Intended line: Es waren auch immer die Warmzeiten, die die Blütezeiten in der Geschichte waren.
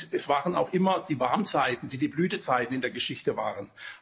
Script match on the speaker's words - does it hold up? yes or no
yes